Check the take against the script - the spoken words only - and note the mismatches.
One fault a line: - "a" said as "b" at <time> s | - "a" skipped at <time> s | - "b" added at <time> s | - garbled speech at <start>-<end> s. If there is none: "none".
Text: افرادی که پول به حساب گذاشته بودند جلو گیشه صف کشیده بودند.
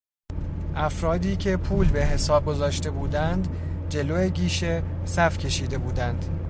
none